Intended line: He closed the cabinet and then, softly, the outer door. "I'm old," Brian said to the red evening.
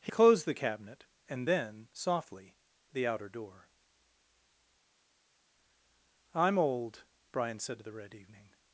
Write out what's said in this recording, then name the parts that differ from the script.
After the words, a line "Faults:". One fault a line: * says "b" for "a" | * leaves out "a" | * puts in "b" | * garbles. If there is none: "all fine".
He closed the cabinet and then, softly, the outer door. "I'm old," Brian said to the red evening.
Faults:
all fine